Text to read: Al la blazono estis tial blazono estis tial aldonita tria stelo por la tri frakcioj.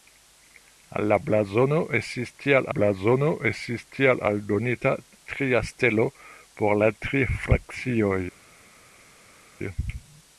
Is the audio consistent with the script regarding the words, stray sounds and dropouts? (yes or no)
yes